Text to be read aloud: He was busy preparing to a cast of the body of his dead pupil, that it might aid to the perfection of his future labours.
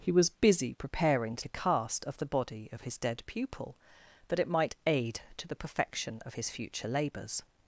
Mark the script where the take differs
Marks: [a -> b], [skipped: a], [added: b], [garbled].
He was busy preparing to a cast of the body of his dead pupil, that it might aid to the perfection of his future labours.